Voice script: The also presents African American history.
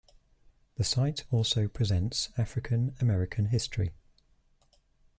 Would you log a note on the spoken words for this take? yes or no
yes